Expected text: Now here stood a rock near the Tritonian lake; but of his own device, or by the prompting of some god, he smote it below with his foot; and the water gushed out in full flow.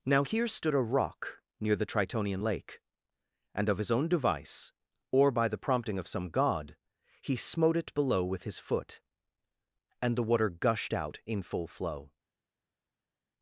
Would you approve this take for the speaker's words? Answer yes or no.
no